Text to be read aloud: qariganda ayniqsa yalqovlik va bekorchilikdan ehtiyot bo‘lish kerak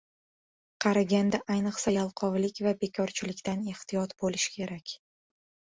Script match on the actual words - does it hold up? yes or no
yes